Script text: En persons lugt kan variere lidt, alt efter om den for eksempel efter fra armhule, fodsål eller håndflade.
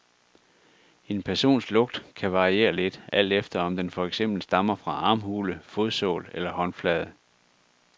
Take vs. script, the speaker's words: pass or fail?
fail